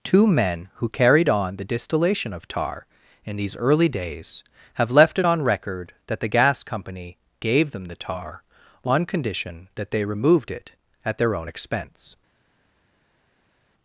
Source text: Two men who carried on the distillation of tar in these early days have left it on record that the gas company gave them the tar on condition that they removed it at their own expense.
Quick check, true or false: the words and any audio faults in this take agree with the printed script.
true